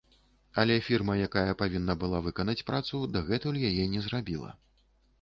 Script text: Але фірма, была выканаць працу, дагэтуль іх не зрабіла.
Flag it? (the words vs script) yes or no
yes